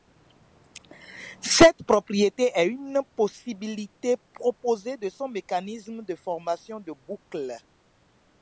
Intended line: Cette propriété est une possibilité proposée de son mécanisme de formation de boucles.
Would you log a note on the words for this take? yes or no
no